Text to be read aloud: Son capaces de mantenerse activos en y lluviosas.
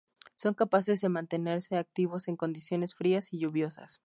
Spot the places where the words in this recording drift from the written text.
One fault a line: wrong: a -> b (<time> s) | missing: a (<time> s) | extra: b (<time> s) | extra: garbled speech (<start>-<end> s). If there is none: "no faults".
extra: condiciones frías (2.4 s)